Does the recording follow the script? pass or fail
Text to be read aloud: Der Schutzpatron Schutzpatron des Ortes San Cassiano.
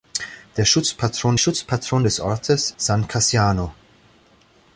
pass